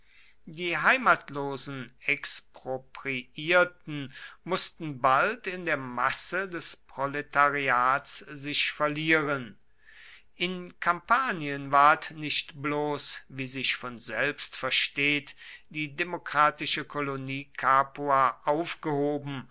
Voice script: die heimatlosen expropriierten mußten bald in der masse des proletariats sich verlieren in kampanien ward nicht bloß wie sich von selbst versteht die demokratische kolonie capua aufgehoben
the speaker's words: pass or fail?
pass